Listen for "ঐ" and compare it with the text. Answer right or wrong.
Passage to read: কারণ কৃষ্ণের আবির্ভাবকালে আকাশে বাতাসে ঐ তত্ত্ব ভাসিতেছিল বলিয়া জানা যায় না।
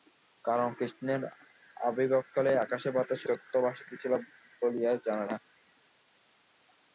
wrong